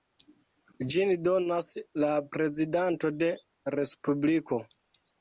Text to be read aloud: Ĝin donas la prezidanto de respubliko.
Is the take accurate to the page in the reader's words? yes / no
yes